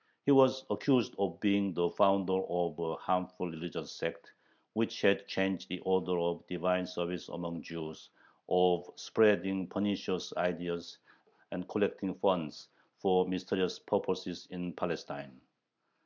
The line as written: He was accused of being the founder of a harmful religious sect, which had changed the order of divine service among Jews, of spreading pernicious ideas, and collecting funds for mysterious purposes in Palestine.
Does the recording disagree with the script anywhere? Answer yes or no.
no